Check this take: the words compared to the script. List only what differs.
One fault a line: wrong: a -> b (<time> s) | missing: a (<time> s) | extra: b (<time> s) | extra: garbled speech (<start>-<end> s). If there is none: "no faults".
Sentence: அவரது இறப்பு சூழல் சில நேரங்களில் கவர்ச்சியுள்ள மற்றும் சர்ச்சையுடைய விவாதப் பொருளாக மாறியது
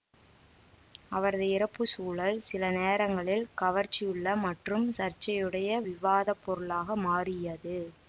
no faults